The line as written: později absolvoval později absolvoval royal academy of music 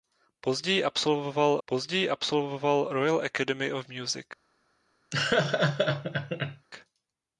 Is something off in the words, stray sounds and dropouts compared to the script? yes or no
yes